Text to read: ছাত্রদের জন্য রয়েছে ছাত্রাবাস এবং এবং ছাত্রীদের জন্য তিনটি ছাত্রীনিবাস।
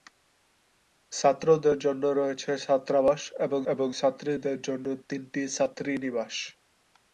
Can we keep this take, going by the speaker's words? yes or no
yes